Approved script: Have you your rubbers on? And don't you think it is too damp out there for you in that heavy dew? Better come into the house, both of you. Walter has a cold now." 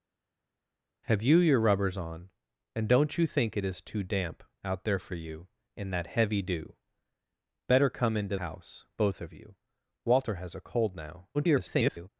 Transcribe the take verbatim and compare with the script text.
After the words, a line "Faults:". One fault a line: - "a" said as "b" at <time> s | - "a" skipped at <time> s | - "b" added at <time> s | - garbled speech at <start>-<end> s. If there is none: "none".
Have you your rubbers on? And don't you think it is too damp out there for you in that heavy dew? Better come into house, both of you. Walter has a cold now." [garbled]
Faults:
- "the" skipped at 8.4 s
- garbled speech at 11.3-12.1 s